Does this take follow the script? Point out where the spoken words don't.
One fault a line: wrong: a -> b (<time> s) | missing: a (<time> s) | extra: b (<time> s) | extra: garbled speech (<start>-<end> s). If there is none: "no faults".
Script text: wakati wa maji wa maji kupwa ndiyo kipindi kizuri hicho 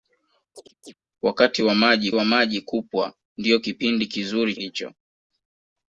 no faults